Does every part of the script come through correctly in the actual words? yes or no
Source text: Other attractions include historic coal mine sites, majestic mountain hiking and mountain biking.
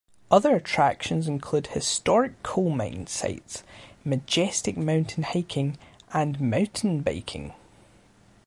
yes